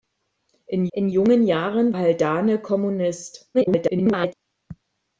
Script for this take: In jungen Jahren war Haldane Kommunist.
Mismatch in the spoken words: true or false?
true